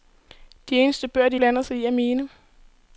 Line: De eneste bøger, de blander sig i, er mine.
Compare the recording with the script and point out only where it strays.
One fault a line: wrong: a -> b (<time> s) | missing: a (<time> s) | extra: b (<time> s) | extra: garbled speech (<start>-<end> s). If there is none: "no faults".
no faults